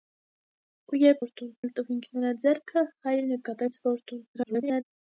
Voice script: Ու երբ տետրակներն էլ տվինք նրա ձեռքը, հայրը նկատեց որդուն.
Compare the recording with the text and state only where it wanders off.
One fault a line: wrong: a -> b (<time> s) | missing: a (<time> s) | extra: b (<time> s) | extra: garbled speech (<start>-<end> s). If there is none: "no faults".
wrong: տետրակներն -> որդուն (1.2 s)
extra: garbled speech (4.3-4.8 s)